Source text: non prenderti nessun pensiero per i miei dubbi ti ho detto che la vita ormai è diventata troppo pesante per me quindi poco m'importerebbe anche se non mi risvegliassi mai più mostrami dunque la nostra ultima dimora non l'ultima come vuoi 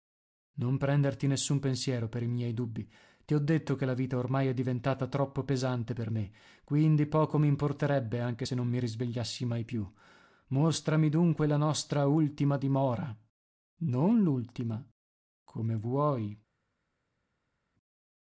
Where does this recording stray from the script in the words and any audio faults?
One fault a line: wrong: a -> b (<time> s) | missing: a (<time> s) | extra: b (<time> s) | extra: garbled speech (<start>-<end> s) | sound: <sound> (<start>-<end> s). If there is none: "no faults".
no faults